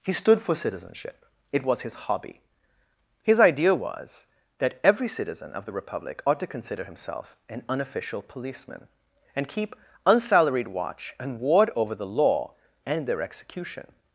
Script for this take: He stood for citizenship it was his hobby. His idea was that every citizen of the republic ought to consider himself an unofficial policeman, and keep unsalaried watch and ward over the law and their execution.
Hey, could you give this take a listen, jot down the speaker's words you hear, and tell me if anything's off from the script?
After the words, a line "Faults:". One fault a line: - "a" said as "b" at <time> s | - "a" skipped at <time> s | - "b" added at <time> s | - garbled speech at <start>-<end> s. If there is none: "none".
He stood for citizenship it was his hobby. His idea was that every citizen of the republic ought to consider himself an unofficial policeman, and keep unsalaried watch and ward over the law and their execution.
Faults:
none